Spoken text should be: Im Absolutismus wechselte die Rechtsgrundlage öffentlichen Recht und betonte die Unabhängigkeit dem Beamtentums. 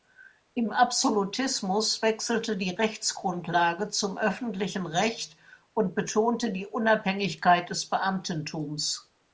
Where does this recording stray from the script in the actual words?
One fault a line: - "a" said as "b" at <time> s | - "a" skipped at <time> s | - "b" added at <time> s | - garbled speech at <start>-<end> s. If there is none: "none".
- "zum" added at 3.9 s
- "dem" said as "des" at 7.7 s